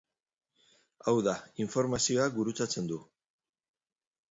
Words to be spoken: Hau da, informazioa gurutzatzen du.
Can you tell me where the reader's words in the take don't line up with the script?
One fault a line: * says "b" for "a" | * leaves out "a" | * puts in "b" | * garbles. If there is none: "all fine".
all fine